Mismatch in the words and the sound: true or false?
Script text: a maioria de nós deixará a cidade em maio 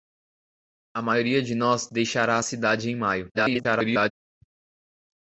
true